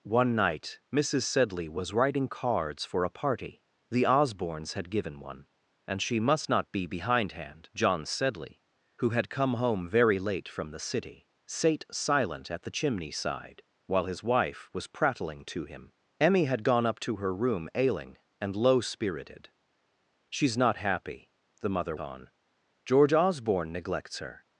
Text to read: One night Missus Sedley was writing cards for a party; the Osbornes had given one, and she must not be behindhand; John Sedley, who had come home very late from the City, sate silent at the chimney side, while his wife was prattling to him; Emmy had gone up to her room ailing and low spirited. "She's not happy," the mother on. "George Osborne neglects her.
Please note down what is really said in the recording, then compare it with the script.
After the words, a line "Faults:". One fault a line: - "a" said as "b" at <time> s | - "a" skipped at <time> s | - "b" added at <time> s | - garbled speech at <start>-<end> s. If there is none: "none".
One night Missus Sedley was writing cards for a party; the Osbornes had given one, and she must not be behindhand; John Sedley, who had come home very late from the City, sate silent at the chimney side, while his wife was prattling to him; Emmy had gone up to her room ailing and low spirited. "She's not happy," the mother on. "George Osborne neglects her.
Faults:
none